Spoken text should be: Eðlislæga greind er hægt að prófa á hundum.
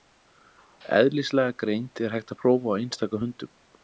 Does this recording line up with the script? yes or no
no